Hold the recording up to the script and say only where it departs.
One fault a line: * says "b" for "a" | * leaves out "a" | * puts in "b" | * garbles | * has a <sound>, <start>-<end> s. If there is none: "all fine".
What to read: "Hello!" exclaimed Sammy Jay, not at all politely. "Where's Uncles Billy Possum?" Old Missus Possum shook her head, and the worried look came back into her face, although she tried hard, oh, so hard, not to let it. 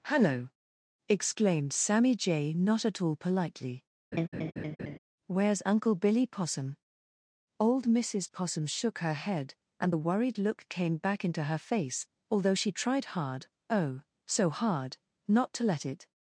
* has a laugh, 4.1-5.0 s
* says "Uncle" for "Uncles"